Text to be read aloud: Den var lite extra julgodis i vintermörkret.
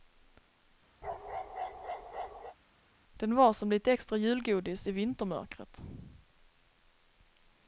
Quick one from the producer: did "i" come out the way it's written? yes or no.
yes